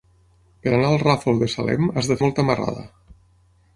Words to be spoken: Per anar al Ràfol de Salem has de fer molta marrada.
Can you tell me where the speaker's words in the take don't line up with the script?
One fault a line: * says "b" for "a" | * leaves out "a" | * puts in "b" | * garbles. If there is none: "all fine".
* leaves out "fer"